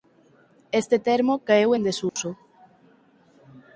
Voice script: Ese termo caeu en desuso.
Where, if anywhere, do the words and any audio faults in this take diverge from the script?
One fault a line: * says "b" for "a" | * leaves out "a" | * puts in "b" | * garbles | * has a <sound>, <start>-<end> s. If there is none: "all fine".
* says "Este" for "Ese"
* has a dropout, 2.1-2.2 s